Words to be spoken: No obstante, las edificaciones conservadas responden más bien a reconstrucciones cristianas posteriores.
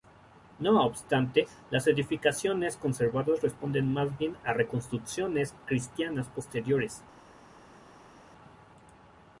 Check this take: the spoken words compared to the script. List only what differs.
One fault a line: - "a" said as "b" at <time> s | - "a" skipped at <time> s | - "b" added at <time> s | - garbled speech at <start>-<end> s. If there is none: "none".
none